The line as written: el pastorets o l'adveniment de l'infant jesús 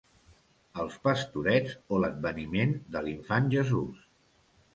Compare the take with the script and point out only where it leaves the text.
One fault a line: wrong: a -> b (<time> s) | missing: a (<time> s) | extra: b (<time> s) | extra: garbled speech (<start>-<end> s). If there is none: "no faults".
wrong: el -> els (0.8 s)